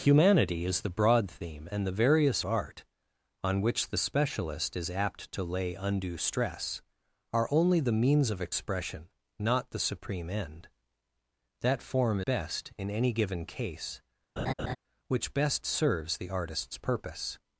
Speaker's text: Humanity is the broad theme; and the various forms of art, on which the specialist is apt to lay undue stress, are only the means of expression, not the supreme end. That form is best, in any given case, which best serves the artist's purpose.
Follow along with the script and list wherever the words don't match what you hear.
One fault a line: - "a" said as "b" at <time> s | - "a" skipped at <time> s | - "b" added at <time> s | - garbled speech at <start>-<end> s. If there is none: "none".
- "forms of" skipped at 2.4 s
- "is" skipped at 12.2 s